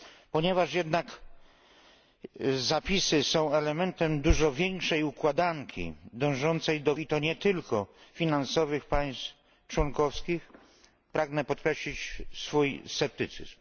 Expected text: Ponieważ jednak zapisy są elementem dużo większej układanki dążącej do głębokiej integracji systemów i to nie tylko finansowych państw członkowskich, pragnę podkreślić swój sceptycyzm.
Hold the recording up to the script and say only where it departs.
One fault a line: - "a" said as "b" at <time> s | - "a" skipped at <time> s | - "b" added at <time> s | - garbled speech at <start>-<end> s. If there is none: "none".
- "głębokiej integracji systemów" skipped at 7.0 s